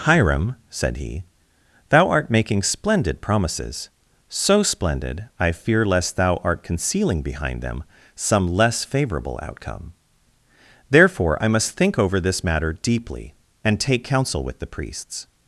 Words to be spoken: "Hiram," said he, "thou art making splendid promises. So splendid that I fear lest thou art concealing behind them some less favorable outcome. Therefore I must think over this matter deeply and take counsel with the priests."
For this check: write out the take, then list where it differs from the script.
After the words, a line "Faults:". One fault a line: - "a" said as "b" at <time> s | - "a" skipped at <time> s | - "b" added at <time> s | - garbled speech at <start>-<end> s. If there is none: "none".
"Hiram," said he, "thou art making splendid promises. So splendid I fear lest thou art concealing behind them some less favorable outcome. Therefore I must think over this matter deeply and take counsel with the priests."
Faults:
- "that" skipped at 5.2 s